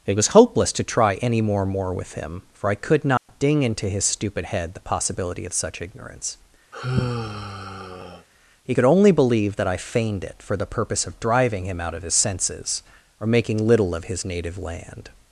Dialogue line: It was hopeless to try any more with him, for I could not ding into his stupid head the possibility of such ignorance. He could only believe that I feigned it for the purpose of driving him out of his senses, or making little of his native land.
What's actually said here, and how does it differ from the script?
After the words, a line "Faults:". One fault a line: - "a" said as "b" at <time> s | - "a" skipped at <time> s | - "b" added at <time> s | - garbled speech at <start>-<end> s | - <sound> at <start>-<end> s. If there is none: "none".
It was hopeless to try any more more with him, for I could not ding into his stupid head the possibility of such ignorance. He could only believe that I feigned it for the purpose of driving him out of his senses, or making little of his native land.
Faults:
- "more" added at 1.6 s
- dropout at 3.2-3.3 s
- sigh at 6.7-8.3 s